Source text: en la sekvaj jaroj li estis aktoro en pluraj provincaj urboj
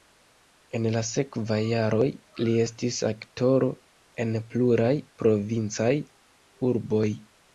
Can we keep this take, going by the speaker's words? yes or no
yes